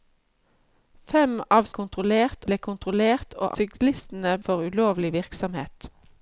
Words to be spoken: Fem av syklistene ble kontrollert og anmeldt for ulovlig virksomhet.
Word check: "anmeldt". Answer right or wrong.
wrong